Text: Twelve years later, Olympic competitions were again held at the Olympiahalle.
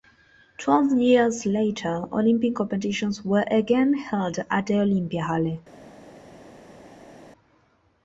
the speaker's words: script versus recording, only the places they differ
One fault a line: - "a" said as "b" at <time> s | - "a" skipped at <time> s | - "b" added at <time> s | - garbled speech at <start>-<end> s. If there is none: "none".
none